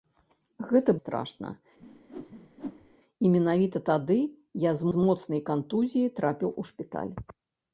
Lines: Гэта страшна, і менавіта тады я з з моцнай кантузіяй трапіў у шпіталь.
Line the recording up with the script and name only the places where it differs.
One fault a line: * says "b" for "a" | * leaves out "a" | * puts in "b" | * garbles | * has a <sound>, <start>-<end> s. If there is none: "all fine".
* has a whoosh, 1.8-2.9 s